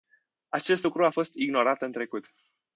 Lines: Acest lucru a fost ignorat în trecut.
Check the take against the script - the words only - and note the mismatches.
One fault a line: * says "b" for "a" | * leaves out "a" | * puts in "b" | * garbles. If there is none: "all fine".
all fine